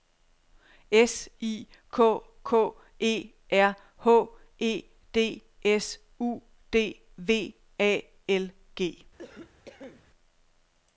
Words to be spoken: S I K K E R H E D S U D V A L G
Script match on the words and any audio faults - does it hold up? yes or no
no